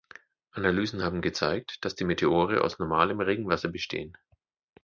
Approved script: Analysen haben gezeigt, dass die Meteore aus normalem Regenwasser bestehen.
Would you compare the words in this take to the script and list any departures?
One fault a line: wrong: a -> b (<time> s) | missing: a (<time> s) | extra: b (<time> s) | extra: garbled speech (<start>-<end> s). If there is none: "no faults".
no faults